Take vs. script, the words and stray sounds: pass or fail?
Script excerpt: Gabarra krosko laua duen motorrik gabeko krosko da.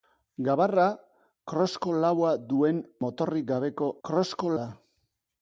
pass